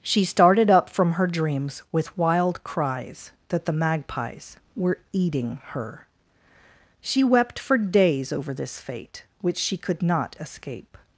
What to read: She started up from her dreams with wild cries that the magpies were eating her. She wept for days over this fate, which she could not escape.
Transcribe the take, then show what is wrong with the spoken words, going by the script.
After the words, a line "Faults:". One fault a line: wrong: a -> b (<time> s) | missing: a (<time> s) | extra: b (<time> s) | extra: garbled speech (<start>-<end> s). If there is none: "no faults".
She started up from her dreams with wild cries that the magpies were eating her. She wept for days over this fate, which she could not escape.
Faults:
no faults